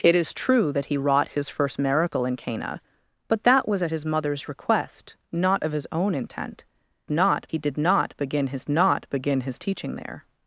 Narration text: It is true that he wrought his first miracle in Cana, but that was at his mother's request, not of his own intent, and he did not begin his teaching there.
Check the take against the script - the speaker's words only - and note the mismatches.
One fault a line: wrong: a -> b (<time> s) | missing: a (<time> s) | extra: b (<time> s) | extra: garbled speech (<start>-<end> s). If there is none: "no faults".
wrong: and -> not (7.1 s)
extra: not begin his (8.7 s)